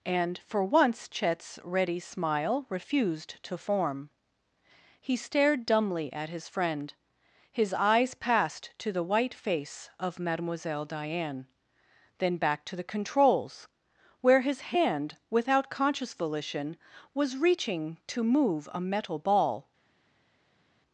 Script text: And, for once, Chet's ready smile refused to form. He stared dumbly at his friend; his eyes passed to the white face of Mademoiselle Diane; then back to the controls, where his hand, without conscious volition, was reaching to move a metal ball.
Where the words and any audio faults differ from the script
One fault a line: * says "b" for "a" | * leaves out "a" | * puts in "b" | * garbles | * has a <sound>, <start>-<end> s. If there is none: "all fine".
all fine